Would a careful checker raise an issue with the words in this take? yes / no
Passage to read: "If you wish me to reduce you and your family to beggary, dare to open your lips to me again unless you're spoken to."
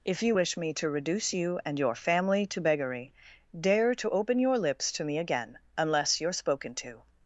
no